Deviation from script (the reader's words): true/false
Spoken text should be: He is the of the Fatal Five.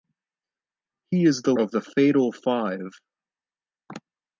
false